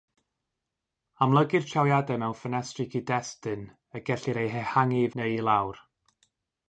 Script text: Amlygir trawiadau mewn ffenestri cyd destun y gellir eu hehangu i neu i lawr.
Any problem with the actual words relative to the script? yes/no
no